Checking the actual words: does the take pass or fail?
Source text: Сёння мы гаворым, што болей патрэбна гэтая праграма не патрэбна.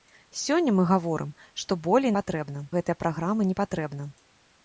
pass